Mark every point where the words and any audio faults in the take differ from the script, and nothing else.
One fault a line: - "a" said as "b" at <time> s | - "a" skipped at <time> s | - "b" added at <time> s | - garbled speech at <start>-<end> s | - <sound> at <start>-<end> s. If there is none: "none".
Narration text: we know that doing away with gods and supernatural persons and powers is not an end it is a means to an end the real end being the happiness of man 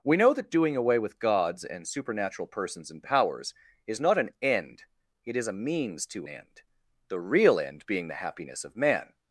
- "an" skipped at 6.3 s